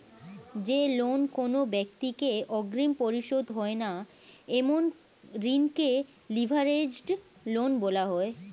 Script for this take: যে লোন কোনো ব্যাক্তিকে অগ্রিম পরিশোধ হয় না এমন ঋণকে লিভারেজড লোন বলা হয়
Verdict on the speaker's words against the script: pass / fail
pass